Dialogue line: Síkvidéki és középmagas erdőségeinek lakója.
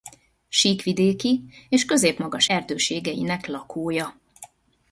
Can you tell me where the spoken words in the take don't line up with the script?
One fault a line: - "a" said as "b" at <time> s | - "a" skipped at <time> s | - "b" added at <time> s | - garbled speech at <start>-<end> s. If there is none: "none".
none